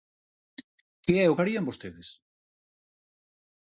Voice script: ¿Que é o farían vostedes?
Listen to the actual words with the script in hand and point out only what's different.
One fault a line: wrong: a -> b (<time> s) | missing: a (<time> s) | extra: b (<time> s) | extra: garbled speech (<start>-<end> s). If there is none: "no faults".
no faults